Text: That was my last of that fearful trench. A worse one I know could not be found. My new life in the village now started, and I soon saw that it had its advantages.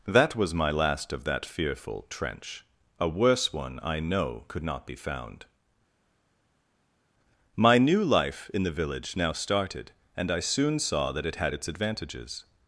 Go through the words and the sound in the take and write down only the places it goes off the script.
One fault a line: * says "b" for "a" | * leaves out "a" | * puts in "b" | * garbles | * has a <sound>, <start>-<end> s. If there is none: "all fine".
all fine